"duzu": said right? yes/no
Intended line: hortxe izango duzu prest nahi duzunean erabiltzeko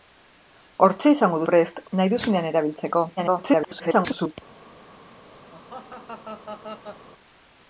no